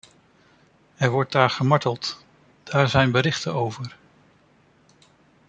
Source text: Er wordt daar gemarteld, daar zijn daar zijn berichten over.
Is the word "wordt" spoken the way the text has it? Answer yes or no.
yes